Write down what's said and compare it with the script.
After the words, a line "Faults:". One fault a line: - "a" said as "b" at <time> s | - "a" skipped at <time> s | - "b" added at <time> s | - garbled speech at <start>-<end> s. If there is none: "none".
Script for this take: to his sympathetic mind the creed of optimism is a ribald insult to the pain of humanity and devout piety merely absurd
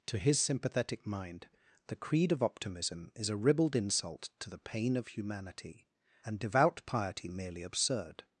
to his sympathetic mind the creed of optimism is a ribald insult to the pain of humanity and devout piety merely absurd
Faults:
none